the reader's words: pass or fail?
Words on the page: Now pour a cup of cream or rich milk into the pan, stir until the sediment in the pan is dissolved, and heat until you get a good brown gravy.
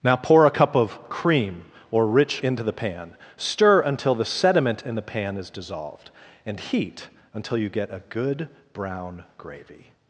fail